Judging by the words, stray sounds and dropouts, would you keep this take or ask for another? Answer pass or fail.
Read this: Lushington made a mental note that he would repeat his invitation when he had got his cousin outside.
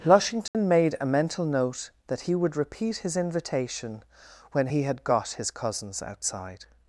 fail